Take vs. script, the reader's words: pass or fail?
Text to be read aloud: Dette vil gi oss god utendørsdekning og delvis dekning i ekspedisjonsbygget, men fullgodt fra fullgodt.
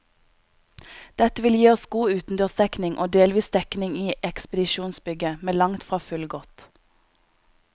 fail